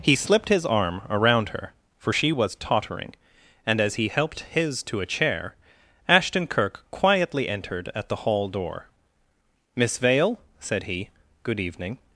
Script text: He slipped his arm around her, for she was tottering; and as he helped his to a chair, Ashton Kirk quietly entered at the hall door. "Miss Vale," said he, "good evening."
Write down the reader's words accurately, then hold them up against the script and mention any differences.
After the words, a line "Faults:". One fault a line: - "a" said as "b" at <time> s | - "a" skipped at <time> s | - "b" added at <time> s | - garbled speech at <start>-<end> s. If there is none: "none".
He slipped his arm around her, for she was tottering; and as he helped his to a chair, Ashton Kirk quietly entered at the hall door. "Miss Vale," said he, "good evening."
Faults:
none